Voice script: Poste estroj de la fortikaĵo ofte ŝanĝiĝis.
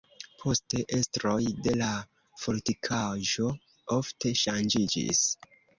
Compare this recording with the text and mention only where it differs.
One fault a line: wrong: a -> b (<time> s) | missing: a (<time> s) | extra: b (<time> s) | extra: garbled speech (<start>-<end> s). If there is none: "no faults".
no faults